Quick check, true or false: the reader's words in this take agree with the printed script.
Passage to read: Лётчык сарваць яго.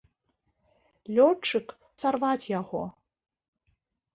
true